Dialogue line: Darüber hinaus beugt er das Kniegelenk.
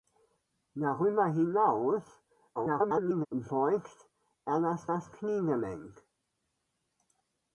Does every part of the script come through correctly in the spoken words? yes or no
no